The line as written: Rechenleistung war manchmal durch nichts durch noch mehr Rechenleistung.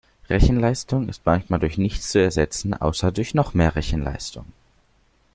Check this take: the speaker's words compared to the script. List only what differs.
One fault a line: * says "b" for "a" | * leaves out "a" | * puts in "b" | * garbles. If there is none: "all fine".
* says "ist" for "war"
* puts in "zu ersetzen außer"